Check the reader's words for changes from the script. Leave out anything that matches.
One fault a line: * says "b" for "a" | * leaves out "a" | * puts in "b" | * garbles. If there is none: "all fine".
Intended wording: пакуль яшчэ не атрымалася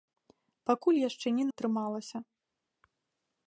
all fine